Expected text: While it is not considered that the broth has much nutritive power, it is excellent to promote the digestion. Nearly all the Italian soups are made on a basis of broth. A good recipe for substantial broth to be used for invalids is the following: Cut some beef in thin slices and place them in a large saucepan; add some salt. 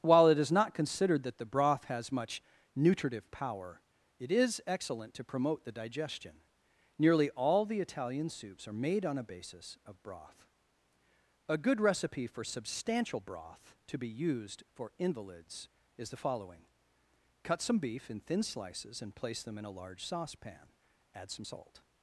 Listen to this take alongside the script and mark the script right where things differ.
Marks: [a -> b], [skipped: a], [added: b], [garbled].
While it is not considered that the broth has much nutritive power, it is excellent to promote the digestion. Nearly all the Italian soups are made on a basis of broth. A good recipe for substantial broth to be used for invalids is the following: Cut some beef in thin slices and place them in a large saucepan; add some salt.